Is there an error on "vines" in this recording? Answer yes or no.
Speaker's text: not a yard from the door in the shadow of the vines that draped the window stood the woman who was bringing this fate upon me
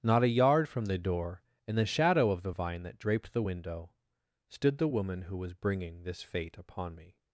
yes